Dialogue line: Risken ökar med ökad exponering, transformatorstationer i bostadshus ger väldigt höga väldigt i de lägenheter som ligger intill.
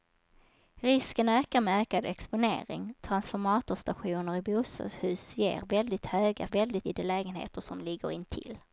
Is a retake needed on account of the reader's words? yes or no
no